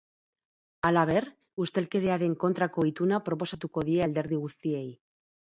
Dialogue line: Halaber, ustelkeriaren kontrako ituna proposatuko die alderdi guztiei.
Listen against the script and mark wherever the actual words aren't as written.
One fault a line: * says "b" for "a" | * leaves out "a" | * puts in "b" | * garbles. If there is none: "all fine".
all fine